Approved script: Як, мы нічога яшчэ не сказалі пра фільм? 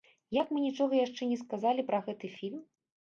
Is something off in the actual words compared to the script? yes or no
yes